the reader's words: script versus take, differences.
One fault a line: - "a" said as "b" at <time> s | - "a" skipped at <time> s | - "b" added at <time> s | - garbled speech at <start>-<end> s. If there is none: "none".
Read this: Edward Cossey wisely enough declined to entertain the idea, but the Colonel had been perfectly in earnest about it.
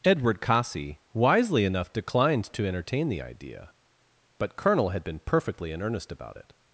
- "the" skipped at 4.6 s